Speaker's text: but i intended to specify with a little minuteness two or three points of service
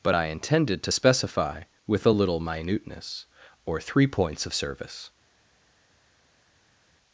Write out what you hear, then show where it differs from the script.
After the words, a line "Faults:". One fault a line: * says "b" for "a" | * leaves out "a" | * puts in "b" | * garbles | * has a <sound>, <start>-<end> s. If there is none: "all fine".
but i intended to specify with a little minuteness or three points of service
Faults:
* leaves out "two"